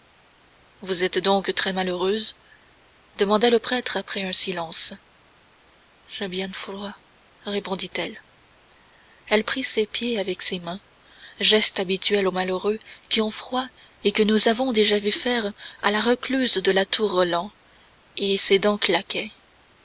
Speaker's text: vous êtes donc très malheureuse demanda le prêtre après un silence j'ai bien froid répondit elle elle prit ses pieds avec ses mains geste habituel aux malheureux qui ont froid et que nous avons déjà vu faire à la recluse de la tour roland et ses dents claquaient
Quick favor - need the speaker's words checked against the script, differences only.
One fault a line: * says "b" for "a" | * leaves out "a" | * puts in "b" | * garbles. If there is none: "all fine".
all fine